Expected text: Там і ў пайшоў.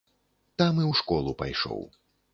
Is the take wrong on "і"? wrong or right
right